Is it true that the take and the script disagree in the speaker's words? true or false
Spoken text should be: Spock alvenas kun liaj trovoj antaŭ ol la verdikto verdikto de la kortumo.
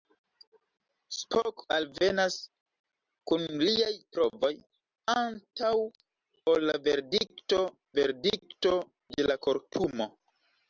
false